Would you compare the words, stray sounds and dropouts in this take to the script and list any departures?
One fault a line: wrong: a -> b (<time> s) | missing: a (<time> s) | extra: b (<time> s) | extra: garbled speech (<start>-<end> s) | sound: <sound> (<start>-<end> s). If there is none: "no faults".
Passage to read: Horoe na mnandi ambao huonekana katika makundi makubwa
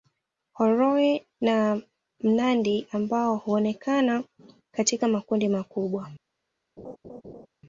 sound: laugh (6.8-7.5 s)